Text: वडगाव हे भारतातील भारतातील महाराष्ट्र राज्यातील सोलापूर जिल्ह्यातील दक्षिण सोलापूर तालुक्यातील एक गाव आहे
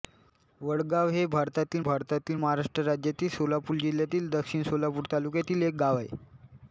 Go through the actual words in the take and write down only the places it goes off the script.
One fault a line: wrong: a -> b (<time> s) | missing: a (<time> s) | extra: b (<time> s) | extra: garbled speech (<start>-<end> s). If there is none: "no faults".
no faults